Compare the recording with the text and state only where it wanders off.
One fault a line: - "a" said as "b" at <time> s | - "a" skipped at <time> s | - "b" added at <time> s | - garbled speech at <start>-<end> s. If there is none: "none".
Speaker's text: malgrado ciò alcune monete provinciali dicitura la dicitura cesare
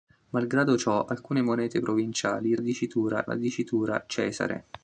none